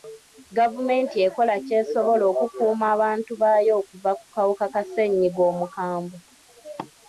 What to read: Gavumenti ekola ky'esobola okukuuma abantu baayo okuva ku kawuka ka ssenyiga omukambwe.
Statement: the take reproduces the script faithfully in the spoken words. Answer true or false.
true